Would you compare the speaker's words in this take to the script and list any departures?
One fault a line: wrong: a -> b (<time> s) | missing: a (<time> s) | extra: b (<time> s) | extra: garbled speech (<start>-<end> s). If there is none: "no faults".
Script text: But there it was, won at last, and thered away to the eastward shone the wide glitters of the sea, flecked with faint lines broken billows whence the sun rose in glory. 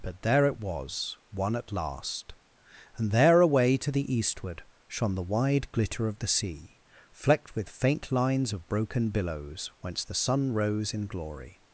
wrong: thered -> there (3.1 s)
wrong: glitters -> glitter (5.7 s)
extra: of (8.5 s)